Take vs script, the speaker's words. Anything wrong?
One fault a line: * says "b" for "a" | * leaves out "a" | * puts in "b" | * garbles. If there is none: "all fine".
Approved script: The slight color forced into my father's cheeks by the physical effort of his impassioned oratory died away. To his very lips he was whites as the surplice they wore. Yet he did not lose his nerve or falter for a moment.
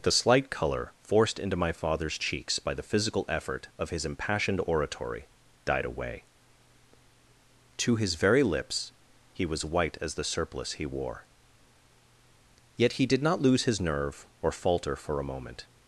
* says "white" for "whites"
* says "he" for "they"